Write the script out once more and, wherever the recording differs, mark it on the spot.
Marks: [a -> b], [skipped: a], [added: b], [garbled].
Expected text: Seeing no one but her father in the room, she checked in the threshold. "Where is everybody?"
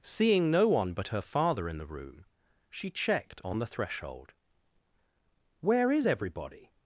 Seeing no one but her father in the room, she checked [in -> on] the threshold. "Where is everybody?"